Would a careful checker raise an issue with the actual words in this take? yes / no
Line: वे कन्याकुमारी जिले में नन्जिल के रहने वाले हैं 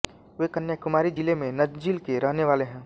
no